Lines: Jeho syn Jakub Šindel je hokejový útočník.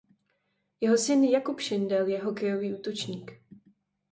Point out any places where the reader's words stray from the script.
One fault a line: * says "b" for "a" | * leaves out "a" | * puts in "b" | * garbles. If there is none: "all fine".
all fine